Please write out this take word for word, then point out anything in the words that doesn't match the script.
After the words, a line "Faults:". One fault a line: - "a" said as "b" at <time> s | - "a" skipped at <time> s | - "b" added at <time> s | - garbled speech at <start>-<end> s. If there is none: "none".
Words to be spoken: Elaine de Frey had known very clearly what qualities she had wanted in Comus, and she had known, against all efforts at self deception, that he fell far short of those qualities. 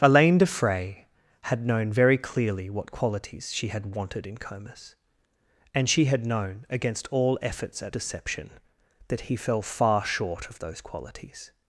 Elaine de Frey had known very clearly what qualities she had wanted in Comus, and she had known, against all efforts at deception, that he fell far short of those qualities.
Faults:
- "self" skipped at 8.0 s